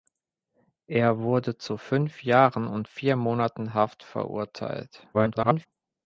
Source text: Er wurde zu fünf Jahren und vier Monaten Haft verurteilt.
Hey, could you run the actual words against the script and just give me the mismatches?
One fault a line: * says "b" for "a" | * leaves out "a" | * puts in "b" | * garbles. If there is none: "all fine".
* garbles